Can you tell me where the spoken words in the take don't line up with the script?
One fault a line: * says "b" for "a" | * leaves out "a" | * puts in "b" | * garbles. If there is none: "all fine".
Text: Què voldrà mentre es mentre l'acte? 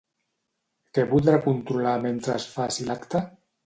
* puts in "controlar"
* says "faci" for "mentre"